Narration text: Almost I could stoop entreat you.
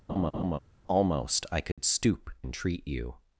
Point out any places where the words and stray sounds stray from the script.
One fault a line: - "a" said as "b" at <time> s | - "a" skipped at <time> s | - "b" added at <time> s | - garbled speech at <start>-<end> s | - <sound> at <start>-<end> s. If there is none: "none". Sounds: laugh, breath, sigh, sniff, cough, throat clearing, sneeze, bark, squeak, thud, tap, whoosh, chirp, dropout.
- laugh at 0.1-0.6 s
- dropout at 1.7-1.8 s